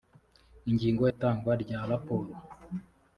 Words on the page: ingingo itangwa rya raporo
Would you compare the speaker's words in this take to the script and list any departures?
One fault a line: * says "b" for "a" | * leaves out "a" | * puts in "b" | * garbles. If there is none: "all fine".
all fine